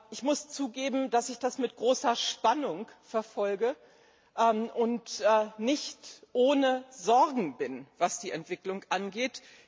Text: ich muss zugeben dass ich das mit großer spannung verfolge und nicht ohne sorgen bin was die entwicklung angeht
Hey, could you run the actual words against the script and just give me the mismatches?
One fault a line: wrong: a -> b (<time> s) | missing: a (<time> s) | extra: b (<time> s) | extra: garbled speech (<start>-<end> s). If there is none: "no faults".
no faults